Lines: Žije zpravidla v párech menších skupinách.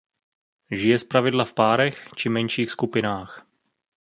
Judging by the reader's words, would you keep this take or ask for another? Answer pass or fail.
fail